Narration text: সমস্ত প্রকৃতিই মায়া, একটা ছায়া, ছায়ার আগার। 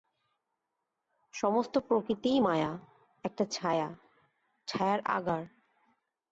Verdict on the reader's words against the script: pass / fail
pass